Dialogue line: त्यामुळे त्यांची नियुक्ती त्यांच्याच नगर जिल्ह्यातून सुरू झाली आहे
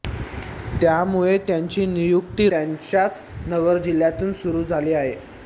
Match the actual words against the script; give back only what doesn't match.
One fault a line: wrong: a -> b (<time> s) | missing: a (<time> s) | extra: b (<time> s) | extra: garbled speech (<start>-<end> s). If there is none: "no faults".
no faults